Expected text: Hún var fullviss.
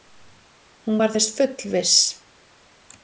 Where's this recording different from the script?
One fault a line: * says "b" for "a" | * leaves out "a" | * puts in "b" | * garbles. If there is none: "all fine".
* puts in "þess"